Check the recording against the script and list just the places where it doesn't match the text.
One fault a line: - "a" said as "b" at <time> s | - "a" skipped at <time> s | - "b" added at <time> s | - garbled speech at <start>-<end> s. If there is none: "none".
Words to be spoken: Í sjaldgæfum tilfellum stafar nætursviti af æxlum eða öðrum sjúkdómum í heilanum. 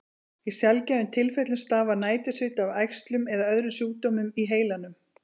none